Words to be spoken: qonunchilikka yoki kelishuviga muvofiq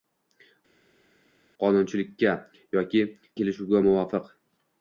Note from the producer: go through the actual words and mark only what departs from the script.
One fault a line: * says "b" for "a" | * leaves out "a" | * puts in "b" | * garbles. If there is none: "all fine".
all fine